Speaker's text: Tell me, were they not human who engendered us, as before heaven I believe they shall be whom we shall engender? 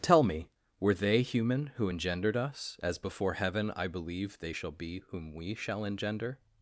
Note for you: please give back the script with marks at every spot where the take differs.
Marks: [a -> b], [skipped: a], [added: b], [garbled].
Tell me, were they [skipped: not] human who engendered us, as before heaven I believe they shall be whom we shall engender?